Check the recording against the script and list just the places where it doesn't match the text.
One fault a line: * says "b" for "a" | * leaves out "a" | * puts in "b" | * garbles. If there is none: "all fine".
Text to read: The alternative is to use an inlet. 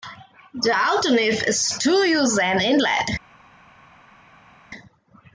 all fine